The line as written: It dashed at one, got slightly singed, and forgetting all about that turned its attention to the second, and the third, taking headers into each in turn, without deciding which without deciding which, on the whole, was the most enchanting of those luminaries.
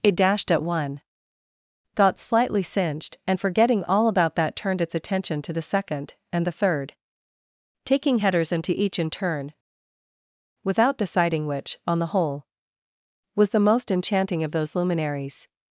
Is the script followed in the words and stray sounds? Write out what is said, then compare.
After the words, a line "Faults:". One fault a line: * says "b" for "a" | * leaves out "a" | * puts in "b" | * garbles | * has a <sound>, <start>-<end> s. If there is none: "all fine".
It dashed at one, got slightly singed, and forgetting all about that turned its attention to the second, and the third, taking headers into each in turn, without deciding which, on the whole, was the most enchanting of those luminaries.
Faults:
* leaves out "without deciding which"